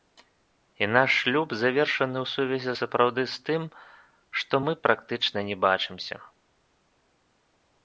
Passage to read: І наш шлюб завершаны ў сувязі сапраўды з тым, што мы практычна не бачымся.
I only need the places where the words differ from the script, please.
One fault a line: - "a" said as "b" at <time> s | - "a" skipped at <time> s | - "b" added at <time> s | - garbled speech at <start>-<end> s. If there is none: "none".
none